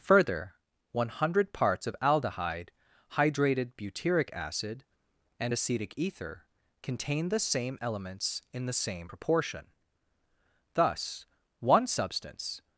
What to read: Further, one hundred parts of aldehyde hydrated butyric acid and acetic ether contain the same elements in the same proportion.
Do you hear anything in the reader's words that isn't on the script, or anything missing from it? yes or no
yes